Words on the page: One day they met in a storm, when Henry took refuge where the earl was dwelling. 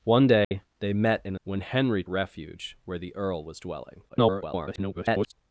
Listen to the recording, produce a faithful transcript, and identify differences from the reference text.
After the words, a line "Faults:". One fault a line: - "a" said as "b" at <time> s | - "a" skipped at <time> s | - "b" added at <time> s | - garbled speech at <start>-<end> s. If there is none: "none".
One day they met in a when Henry refuge where the earl was dwelling. [garbled]
Faults:
- "storm" skipped at 1.4 s
- "took" skipped at 2.0 s
- garbled speech at 4.1-5.3 s